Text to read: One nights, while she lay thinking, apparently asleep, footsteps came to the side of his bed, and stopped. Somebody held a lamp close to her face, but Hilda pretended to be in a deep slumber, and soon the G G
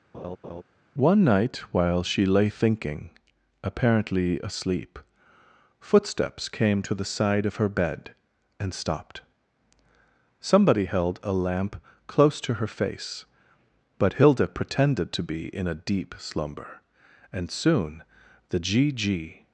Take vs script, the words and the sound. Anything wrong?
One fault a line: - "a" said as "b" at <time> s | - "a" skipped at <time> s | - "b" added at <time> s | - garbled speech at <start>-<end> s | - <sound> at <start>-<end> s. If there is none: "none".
- laugh at 0.1-0.6 s
- "nights" said as "night" at 1.2 s
- "his" said as "her" at 7.6 s